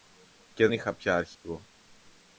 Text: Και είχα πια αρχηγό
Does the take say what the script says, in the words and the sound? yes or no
no